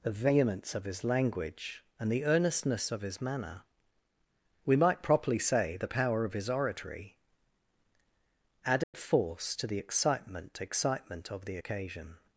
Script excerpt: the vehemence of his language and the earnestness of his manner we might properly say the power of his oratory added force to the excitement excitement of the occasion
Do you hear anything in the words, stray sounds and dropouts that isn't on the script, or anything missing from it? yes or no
yes